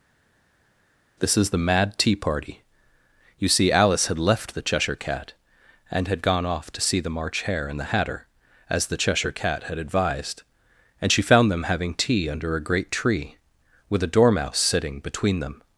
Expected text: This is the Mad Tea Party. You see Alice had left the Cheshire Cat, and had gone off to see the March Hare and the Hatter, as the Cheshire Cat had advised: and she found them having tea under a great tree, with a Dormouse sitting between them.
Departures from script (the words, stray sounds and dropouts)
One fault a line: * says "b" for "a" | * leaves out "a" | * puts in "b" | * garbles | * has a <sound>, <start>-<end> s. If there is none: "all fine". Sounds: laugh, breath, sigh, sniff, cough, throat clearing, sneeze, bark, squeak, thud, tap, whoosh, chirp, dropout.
all fine